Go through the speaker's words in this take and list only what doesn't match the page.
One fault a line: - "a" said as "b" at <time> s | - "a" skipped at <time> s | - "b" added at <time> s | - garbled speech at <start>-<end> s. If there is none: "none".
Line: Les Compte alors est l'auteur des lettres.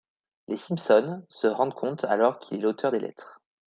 - "Simpson se rendent" added at 0.6 s
- "qu'il" added at 2.4 s